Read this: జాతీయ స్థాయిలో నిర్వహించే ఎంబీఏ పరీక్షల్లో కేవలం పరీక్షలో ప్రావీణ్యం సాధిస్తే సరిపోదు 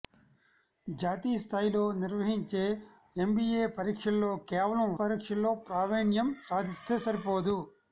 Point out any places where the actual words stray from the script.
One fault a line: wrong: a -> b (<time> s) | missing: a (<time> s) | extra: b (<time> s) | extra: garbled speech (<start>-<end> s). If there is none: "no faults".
no faults